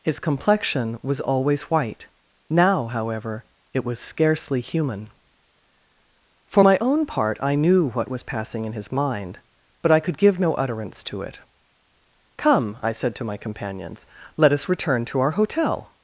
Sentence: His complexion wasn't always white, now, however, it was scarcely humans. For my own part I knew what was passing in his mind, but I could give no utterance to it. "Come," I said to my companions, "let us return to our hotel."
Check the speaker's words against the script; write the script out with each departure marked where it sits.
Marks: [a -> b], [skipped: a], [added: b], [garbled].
His complexion [wasn't -> was] always white, now, however, it was scarcely [humans. -> human] For my own part I knew what was passing in his mind, but I could give no utterance to it. "Come," I said to my companions, "let us return to our hotel."